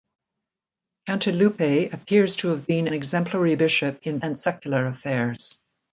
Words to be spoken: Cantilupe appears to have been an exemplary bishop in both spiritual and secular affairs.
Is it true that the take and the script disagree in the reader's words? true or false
true